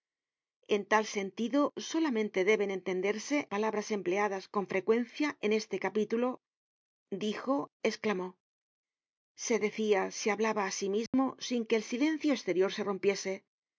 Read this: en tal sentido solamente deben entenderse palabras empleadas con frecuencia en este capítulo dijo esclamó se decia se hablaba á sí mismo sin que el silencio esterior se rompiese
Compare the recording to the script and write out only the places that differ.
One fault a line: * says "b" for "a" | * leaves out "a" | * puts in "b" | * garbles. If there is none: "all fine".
all fine